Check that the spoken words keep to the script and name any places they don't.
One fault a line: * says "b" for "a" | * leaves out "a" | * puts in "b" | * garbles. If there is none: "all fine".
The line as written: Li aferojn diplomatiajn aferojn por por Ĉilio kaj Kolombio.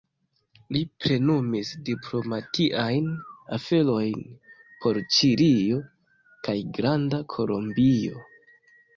* says "plenumis" for "aferojn"
* leaves out "por"
* puts in "Granda"